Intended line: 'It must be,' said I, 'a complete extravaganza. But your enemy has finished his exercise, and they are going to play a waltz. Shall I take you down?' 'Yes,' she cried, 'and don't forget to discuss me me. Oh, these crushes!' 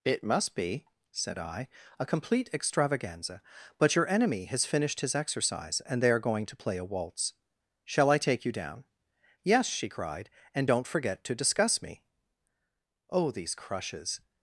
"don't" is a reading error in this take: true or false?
false